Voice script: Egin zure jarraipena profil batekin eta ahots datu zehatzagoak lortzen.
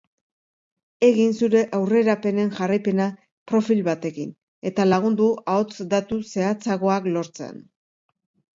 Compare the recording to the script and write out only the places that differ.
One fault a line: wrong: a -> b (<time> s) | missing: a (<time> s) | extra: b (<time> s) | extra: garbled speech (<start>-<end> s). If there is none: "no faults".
extra: aurrerapenen (1.8 s)
extra: lagundu (4.9 s)